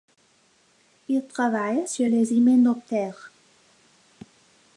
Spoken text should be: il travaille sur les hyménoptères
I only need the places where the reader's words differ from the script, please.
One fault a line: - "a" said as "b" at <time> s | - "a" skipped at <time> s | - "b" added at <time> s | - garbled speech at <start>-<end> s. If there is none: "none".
none